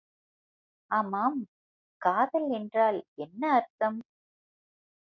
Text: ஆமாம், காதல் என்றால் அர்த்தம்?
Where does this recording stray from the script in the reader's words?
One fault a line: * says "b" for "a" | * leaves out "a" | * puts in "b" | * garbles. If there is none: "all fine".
* puts in "என்ன"